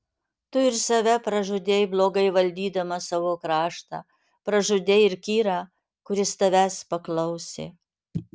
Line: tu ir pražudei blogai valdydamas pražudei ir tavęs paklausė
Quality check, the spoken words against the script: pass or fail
fail